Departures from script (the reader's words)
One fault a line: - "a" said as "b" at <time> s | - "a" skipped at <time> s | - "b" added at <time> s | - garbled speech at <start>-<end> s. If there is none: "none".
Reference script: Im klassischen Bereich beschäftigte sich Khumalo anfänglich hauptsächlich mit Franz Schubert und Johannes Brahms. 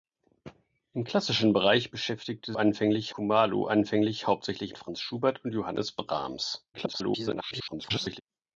- "sich" said as "anfänglich" at 2.5 s
- "mit" skipped at 4.7 s
- garbled speech at 6.7-8.2 s